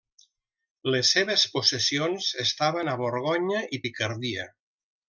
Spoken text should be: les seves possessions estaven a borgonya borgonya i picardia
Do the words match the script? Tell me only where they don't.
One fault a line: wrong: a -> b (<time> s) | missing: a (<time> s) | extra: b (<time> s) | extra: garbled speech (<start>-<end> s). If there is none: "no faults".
missing: borgonya (3.6 s)